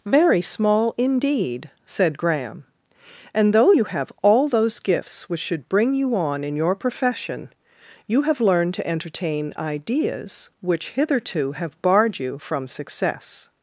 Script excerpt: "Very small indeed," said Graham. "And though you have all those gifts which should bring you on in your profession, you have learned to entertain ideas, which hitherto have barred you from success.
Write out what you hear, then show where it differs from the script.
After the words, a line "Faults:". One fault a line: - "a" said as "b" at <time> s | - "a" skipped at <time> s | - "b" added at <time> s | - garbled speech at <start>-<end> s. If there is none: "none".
"Very small indeed," said Graham. "And though you have all those gifts which should bring you on in your profession, you have learned to entertain ideas, which hitherto have barred you from success.
Faults:
none